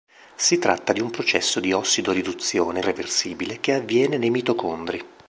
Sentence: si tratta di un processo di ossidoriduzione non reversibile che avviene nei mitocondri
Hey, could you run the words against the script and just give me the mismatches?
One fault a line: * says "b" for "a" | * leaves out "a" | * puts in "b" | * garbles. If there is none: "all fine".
* leaves out "non"